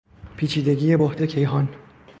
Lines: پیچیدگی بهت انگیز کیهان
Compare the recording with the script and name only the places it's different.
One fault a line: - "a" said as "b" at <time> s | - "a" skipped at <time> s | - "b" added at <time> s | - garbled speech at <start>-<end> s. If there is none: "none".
- "انگیز" skipped at 1.2 s